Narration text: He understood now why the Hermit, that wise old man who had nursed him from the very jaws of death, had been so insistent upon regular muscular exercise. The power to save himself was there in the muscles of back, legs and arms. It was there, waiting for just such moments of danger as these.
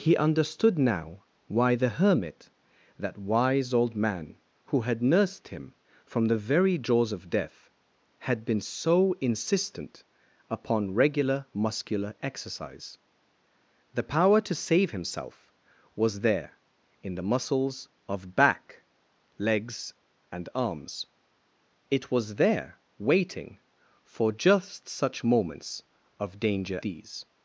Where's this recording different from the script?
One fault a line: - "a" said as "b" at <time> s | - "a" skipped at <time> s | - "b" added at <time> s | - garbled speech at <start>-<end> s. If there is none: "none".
- "as" skipped at 26.8 s